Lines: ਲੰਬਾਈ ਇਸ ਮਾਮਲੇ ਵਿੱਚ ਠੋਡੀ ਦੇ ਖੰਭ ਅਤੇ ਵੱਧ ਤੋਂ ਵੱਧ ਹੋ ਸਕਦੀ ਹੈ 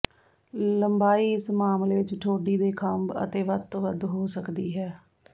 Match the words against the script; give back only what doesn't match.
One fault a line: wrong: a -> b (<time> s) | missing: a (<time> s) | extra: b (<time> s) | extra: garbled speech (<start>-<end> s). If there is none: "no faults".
no faults